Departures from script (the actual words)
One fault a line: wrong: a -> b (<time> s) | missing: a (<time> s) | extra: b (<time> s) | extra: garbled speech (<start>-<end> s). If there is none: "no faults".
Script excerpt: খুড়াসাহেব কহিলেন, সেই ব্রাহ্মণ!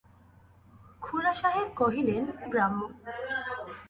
missing: সেই (2.2 s)